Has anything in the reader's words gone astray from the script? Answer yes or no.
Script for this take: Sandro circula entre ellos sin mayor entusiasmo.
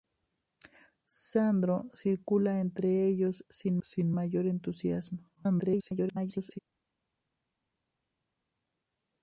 yes